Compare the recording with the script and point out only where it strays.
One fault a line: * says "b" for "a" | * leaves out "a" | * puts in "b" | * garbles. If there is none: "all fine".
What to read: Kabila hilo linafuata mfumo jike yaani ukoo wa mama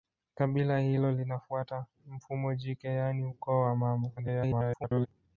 * garbles